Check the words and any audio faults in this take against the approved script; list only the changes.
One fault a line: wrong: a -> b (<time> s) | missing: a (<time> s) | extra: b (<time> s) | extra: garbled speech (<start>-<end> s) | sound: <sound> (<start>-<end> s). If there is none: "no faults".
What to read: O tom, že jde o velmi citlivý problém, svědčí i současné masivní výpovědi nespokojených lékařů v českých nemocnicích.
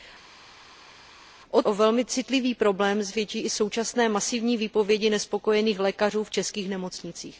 missing: tom že jde (1.6 s)